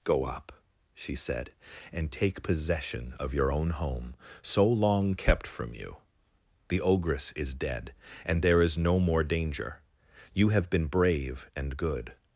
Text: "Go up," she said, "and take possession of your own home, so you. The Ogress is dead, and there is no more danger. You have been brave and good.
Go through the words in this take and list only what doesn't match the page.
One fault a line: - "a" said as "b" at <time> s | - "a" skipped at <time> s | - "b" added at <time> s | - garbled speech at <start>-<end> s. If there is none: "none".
- "long kept from" added at 4.7 s